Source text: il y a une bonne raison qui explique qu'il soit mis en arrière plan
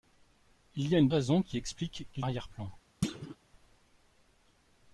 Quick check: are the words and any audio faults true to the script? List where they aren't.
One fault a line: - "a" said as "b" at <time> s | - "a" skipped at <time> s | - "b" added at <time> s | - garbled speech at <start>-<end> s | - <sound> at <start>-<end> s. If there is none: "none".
- "bonne" skipped at 1.1 s
- "soit mis en" skipped at 2.2 s
- thud at 3.0-3.4 s